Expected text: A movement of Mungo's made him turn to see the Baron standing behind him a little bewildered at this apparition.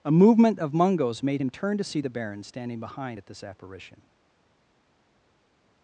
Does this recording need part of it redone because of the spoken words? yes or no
yes